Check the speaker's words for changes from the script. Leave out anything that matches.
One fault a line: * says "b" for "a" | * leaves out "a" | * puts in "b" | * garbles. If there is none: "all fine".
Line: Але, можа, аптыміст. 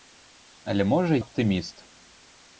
all fine